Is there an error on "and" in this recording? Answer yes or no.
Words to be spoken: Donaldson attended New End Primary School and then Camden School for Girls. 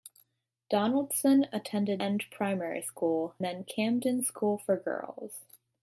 yes